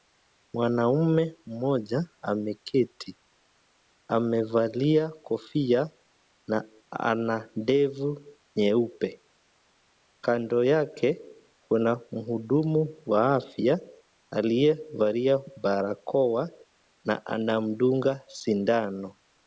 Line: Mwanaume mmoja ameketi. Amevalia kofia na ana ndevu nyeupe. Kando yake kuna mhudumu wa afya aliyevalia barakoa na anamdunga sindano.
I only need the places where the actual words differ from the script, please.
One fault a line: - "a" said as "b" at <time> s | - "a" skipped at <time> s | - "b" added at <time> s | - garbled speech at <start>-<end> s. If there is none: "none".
none